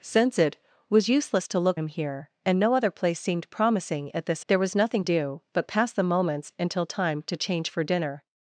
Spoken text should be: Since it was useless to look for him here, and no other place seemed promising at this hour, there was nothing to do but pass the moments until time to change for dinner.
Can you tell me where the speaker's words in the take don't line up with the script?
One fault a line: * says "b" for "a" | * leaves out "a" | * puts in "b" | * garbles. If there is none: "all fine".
* leaves out "for"
* leaves out "hour"
* leaves out "to"